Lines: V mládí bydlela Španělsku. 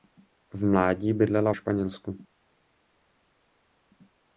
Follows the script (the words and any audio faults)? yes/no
yes